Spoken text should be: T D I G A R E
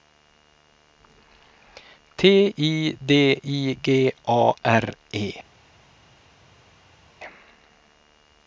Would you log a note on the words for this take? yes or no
yes